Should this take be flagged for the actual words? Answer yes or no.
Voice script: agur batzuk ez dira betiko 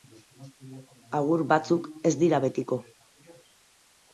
no